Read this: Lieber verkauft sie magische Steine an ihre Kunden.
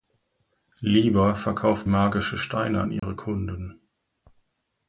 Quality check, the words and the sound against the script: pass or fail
fail